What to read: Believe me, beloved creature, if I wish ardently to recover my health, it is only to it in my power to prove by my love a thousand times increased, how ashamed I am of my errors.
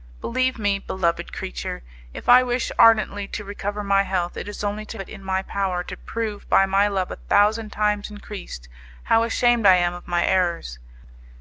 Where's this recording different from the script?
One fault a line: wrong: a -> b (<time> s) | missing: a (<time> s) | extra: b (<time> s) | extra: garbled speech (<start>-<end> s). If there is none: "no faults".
no faults